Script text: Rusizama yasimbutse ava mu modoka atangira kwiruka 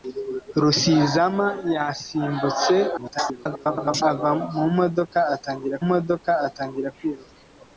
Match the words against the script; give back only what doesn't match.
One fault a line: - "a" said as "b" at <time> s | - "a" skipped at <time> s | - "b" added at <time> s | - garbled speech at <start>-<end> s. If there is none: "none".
- garbled speech at 3.0-4.0 s
- "modoka atangira" added at 5.9 s